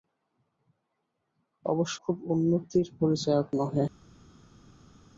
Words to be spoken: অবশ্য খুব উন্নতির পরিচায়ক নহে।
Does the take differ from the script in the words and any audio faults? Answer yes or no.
no